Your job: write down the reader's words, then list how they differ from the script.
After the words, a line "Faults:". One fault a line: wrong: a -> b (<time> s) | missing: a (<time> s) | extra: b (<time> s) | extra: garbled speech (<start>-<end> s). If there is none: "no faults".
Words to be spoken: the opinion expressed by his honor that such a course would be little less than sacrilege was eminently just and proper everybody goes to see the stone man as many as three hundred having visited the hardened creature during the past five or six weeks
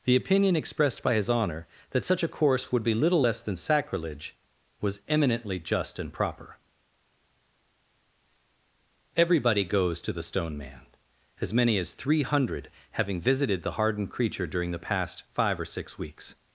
the opinion expressed by his honor that such a course would be little less than sacrilege was eminently just and proper everybody goes to the stone man as many as three hundred having visited the hardened creature during the past five or six weeks
Faults:
missing: see (10.1 s)